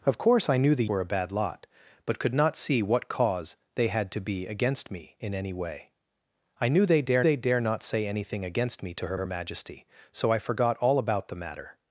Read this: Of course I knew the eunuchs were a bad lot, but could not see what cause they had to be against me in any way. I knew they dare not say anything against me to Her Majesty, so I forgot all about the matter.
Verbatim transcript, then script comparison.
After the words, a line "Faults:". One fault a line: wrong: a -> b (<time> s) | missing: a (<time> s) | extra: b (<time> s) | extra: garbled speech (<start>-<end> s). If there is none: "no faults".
Of course I knew the were a bad lot, but could not see what cause they had to be against me in any way. I knew they dare they dare not say anything against me to Her Her Majesty, so I forgot all about the matter.
Faults:
missing: eunuchs (0.8 s)
extra: they dare (7.2 s)
extra: Her (9.1 s)